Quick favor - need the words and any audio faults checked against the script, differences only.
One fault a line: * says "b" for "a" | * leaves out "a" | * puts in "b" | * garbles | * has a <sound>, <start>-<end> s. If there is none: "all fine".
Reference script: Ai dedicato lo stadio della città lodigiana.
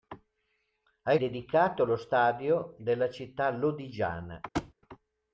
* has a thud, 4.5-4.7 s